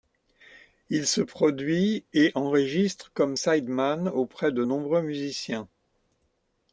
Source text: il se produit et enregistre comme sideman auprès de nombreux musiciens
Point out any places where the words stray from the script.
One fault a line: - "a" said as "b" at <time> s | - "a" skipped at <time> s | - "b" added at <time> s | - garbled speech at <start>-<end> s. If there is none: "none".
none